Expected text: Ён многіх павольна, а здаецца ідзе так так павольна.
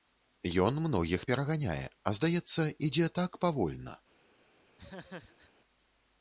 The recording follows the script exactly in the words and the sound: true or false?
false